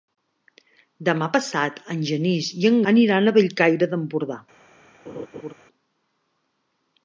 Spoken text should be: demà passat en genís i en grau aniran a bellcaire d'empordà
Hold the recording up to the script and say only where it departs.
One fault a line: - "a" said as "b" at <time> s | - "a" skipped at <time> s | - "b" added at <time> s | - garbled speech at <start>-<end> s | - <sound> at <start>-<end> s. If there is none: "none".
- "grau" skipped at 2.8 s
- laugh at 5.1-5.5 s